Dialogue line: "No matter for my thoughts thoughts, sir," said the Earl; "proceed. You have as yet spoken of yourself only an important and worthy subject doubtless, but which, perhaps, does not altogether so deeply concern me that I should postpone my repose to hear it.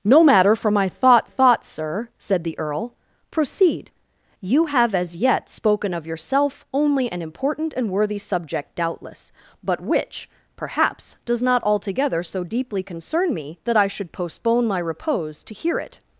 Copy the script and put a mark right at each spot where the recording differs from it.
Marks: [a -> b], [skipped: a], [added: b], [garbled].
"No matter for my thoughts thoughts, sir," said the Earl; "proceed. You have as yet spoken of yourself only an important and worthy subject doubtless, but which, perhaps, does not altogether so deeply concern me that I should postpone my repose to hear it.